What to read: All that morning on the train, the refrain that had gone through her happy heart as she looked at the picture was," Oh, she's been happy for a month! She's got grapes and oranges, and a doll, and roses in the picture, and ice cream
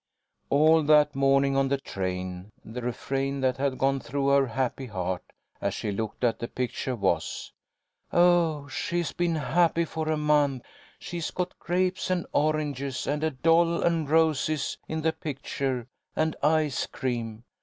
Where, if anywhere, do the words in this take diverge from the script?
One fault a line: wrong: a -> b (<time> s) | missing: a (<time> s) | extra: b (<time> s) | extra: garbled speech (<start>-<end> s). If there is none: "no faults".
no faults